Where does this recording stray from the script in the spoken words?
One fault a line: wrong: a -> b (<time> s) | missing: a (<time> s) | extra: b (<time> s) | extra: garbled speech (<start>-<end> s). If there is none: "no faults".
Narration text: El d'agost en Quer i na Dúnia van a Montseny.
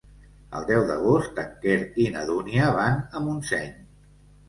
extra: deu (0.7 s)